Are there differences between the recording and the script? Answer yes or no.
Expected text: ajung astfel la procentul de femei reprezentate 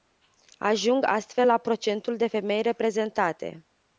no